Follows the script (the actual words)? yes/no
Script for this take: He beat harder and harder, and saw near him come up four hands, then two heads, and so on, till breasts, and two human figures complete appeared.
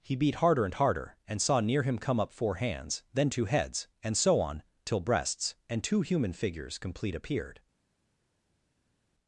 yes